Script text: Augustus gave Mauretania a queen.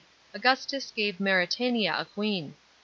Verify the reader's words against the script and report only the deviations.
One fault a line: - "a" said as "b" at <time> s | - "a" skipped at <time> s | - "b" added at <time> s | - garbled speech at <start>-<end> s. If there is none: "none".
none